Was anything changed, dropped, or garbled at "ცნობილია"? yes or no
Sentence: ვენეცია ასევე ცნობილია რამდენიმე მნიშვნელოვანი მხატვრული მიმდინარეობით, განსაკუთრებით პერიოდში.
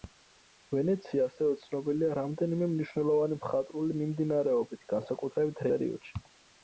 no